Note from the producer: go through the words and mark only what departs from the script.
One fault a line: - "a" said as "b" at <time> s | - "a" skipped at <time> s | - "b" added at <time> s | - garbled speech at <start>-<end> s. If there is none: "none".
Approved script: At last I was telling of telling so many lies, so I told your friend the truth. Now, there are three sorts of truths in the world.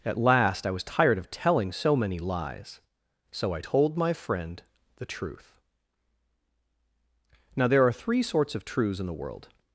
- "telling" said as "tired" at 0.8 s
- "your" said as "my" at 4.0 s